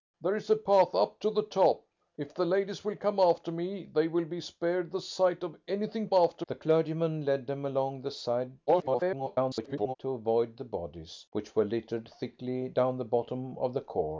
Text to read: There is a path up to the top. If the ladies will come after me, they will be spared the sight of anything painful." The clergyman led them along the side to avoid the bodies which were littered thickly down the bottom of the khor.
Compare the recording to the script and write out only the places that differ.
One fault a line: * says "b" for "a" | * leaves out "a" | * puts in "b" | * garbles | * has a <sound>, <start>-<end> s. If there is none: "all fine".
* says "after" for "painful"
* garbles